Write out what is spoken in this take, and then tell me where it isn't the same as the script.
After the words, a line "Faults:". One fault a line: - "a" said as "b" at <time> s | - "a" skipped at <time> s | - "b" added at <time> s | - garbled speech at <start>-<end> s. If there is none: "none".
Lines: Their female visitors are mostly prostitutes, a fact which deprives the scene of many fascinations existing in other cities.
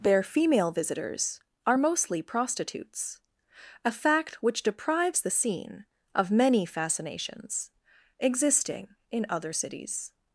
Their female visitors are mostly prostitutes, a fact which deprives the scene of many fascinations existing in other cities.
Faults:
none